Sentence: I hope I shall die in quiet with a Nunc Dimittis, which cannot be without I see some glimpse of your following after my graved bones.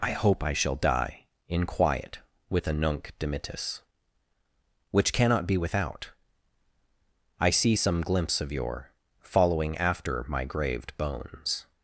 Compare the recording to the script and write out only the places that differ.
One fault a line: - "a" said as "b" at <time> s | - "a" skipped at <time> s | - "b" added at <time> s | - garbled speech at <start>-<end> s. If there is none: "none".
none